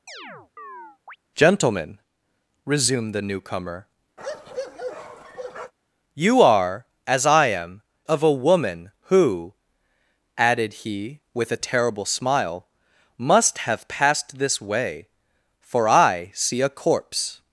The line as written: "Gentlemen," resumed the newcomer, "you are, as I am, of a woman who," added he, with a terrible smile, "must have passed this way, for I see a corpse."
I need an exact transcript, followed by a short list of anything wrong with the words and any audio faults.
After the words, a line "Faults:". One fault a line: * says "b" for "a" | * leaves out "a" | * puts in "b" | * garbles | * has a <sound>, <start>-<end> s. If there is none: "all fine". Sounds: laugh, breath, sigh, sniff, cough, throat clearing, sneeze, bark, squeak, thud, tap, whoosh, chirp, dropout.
"Gentlemen," resumed the newcomer, "you are, as I am, of a woman who," added he, with a terrible smile, "must have passed this way, for I see a corpse."
Faults:
* has a chirp, 0.1-1.2 s
* has a bark, 4.2-5.7 s